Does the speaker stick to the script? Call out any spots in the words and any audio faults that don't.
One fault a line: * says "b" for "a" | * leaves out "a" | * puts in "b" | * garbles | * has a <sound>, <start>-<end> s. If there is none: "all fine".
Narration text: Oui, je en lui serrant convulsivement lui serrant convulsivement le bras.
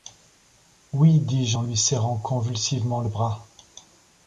* puts in "dis"
* leaves out "lui serrant convulsivement"